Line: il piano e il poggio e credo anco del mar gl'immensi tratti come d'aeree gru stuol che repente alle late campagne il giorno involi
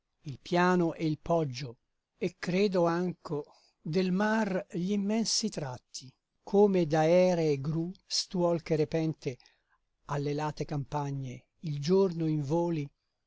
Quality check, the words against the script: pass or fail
pass